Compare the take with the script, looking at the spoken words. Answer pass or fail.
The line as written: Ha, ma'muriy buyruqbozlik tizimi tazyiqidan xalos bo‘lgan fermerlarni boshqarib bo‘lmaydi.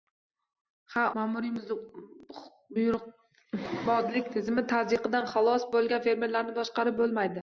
pass